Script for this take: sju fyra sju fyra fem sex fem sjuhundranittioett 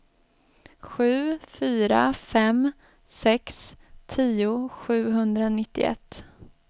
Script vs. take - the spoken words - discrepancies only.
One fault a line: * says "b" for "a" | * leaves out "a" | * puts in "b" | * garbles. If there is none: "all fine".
* leaves out "sju fyra"
* says "tio" for "fem"